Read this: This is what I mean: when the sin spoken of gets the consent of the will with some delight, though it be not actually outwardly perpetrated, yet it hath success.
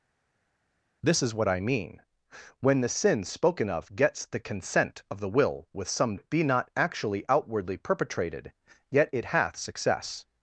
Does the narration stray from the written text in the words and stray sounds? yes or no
yes